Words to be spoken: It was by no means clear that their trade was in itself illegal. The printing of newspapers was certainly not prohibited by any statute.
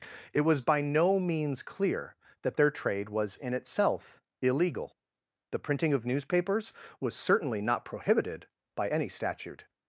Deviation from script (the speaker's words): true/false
false